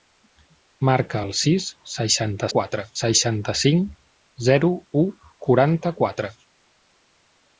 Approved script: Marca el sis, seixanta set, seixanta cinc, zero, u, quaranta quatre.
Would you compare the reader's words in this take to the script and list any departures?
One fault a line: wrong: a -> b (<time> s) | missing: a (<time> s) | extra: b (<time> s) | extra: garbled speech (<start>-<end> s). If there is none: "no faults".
wrong: set -> quatre (2.6 s)